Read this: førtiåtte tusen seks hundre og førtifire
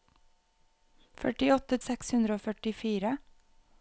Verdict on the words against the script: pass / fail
fail